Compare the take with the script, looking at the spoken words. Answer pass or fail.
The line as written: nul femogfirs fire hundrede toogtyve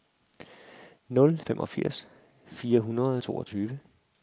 pass